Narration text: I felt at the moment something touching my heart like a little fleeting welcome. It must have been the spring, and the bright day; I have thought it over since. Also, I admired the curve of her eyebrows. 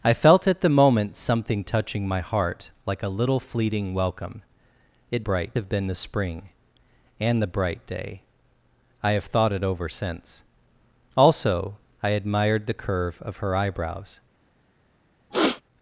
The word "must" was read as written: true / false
false